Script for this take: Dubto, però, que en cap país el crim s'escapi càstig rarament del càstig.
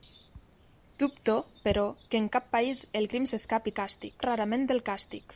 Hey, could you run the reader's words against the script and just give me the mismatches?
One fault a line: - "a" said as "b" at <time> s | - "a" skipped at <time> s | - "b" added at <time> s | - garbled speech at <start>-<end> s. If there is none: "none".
none